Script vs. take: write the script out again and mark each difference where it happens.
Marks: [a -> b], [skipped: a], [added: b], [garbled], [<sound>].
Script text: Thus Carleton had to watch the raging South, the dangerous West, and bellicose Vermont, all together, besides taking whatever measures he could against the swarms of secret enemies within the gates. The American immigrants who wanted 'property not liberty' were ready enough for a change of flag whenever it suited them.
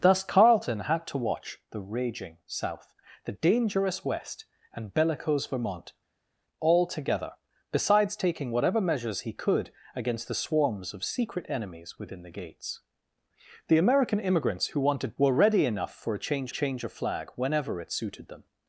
Thus Carleton had to watch the raging South, the dangerous West, and bellicose Vermont, all together, besides taking whatever measures he could against the swarms of secret enemies within the gates. The American immigrants who wanted [skipped: 'property not liberty'] were ready enough for a change [added: change] of flag whenever it suited them.